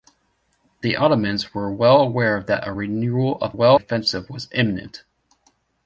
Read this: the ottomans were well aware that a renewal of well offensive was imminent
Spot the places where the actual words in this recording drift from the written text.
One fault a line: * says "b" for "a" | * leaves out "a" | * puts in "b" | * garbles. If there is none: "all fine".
all fine